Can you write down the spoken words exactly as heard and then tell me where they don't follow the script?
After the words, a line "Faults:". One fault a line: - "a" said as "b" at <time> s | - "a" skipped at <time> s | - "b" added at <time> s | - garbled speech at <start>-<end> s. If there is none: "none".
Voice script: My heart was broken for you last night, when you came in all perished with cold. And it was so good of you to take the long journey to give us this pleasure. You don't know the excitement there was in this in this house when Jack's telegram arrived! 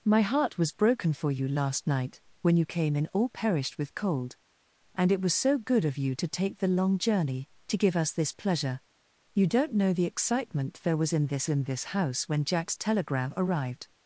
My heart was broken for you last night, when you came in all perished with cold. And it was so good of you to take the long journey to give us this pleasure. You don't know the excitement there was in this in this house when Jack's telegram arrived!
Faults:
none